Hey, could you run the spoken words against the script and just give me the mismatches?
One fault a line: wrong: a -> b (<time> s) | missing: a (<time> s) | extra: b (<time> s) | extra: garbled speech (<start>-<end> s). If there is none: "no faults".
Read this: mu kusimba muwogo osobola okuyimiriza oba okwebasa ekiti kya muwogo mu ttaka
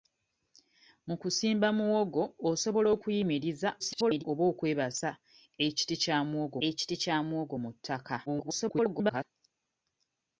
extra: garbled speech (3.8-4.2 s)
extra: ekiti kya muwogo (6.7 s)
extra: garbled speech (8.3-9.2 s)